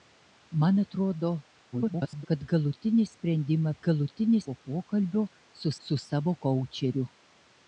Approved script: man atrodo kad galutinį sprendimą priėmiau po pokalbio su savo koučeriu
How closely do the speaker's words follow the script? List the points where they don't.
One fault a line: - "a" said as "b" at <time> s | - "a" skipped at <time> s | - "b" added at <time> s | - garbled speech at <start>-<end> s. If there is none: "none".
- garbled speech at 1.7-2.3 s
- "priėmiau" said as "galutinį" at 3.9 s
- "su" added at 5.9 s